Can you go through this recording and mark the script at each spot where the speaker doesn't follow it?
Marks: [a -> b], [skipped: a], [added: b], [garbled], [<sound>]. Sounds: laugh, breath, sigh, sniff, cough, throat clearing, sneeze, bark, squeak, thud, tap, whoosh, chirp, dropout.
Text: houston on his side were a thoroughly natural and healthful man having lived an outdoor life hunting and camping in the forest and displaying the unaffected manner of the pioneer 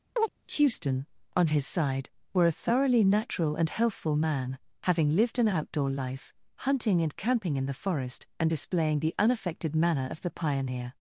[chirp] houston on his side were a thoroughly natural and healthful man having lived an outdoor life hunting and camping in the forest and displaying the unaffected manner of the pioneer